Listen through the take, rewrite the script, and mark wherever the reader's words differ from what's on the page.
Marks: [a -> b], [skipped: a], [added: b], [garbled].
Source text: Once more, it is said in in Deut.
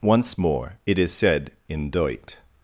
Once more, it is said in [skipped: in] Deut.